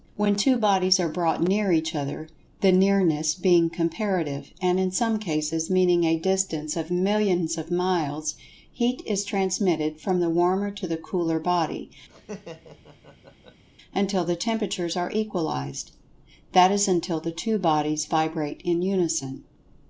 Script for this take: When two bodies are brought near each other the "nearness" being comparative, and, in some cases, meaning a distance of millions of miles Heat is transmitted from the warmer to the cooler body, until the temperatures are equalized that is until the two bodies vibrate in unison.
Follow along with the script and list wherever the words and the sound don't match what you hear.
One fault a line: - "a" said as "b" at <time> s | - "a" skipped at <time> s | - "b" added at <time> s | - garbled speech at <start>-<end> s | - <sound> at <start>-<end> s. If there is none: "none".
- laugh at 12.1-13.6 s